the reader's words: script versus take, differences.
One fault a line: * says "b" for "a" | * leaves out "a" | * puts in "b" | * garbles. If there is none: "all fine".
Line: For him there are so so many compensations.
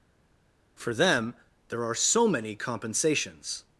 * says "them" for "him"
* leaves out "so"